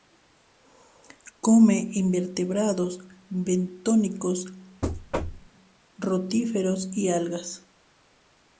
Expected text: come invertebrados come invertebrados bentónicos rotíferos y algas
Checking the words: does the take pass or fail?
fail